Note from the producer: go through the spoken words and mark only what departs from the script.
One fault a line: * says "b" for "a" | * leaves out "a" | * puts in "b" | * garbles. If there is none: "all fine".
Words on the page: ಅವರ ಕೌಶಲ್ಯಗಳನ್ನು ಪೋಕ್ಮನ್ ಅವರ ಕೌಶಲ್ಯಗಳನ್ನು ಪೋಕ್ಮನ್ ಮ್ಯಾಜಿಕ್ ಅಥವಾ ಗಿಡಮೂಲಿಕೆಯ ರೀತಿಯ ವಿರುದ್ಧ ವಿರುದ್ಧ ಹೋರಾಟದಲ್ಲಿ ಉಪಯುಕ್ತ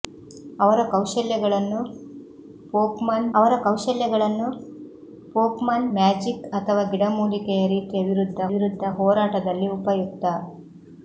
all fine